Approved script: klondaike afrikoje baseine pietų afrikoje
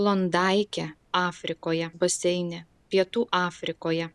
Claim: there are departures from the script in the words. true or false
false